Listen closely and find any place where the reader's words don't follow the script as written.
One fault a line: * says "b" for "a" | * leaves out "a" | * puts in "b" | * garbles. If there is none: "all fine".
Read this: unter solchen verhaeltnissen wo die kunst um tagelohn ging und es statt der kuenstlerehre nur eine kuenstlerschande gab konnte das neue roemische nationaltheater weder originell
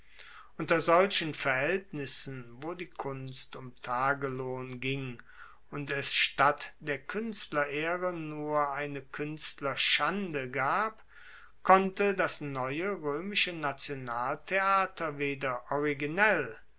all fine